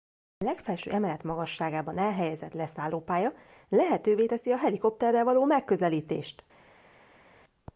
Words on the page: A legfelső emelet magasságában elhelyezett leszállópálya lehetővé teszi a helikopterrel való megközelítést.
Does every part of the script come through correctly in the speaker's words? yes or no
yes